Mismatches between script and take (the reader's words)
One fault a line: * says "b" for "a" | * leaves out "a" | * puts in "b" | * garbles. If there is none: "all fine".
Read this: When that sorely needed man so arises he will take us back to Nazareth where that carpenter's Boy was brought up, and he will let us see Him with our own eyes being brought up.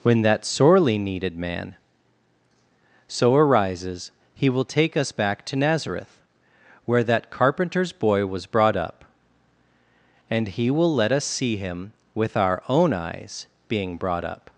all fine